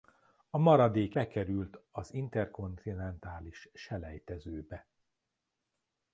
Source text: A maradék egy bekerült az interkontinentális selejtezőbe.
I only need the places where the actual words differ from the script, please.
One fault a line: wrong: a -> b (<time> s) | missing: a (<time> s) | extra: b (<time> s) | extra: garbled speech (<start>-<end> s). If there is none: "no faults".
missing: egy (1.2 s)